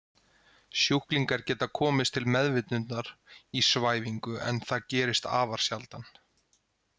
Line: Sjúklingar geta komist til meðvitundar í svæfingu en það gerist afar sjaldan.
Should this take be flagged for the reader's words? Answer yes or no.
no